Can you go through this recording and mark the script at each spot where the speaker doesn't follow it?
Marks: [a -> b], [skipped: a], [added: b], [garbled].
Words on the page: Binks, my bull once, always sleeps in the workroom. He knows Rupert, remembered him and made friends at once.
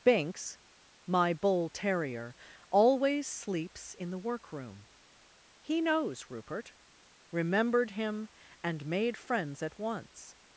Binks, my bull [once, -> terrier] always sleeps in the workroom. He knows Rupert, remembered him and made friends at once.